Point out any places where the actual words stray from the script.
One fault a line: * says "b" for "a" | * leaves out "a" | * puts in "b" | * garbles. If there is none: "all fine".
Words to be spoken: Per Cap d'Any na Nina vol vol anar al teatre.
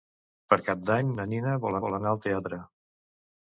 all fine